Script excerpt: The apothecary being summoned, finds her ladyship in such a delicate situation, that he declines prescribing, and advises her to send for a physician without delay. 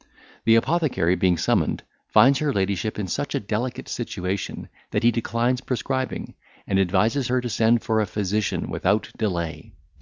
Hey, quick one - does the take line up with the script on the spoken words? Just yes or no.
yes